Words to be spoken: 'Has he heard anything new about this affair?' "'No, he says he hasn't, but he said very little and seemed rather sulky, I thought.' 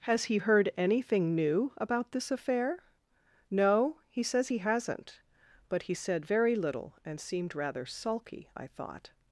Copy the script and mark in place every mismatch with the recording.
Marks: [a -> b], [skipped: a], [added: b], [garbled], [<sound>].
'Has he heard anything new about this affair?' "'No, he says he hasn't, but he said very little and seemed rather sulky, I thought.'